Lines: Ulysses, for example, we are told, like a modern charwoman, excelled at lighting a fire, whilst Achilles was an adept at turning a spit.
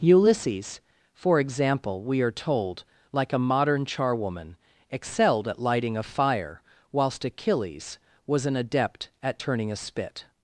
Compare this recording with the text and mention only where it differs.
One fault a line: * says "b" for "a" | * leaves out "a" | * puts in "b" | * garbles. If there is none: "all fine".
all fine